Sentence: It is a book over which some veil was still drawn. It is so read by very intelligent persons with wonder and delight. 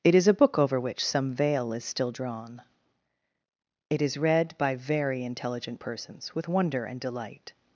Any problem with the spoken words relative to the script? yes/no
yes